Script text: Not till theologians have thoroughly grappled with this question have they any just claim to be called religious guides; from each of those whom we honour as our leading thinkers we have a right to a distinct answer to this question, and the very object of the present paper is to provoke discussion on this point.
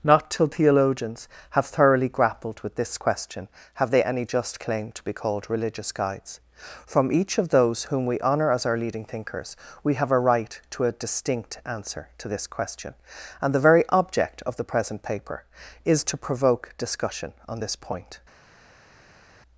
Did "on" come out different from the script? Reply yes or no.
no